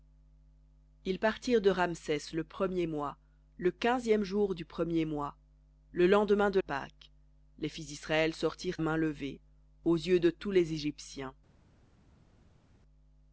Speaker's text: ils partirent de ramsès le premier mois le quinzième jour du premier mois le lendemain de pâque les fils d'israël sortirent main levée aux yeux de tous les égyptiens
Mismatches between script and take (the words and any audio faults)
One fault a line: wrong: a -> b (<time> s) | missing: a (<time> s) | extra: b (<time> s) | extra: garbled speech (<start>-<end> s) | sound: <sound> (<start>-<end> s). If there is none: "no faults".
no faults